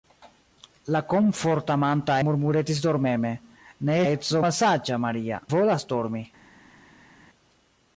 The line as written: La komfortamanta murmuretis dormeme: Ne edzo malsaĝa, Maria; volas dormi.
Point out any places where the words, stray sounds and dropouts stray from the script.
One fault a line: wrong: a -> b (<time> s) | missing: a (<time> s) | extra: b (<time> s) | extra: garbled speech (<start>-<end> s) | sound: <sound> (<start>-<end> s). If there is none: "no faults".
no faults